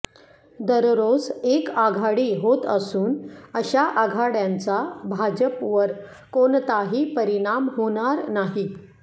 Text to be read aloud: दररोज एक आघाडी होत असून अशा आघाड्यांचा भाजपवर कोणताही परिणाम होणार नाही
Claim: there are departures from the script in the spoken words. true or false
false